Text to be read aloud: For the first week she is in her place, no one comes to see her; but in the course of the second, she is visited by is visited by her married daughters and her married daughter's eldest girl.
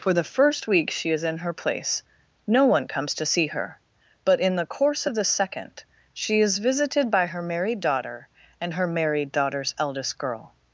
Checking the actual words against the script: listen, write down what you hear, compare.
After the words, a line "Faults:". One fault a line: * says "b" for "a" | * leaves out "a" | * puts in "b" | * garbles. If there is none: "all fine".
For the first week she is in her place, no one comes to see her; but in the course of the second, she is visited by her married daughter and her married daughter's eldest girl.
Faults:
* leaves out "is visited by"
* says "daughter" for "daughters"